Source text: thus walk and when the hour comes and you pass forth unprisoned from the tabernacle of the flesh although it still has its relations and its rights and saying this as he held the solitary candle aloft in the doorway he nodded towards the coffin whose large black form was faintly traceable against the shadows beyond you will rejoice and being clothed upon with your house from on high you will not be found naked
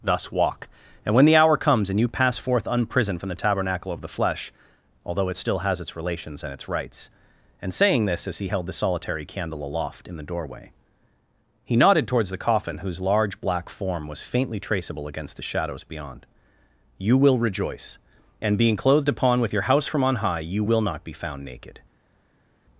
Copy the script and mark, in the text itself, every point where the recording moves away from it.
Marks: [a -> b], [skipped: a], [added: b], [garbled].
thus walk and when the hour comes and you pass forth unprisoned from the tabernacle of the flesh although it still has its relations and its rights and saying this as he held the solitary candle aloft in the doorway he nodded towards the coffin whose large black form was faintly traceable against the shadows beyond you will rejoice and being clothed upon with your house from on high you will not be found naked